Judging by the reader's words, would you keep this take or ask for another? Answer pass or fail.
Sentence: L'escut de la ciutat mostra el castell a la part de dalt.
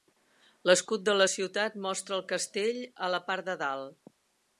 pass